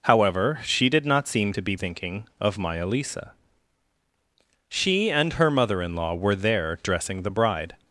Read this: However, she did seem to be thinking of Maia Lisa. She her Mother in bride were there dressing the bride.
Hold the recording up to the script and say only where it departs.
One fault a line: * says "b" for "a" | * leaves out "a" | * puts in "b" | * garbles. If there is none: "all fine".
* puts in "not"
* puts in "and"
* says "law" for "bride"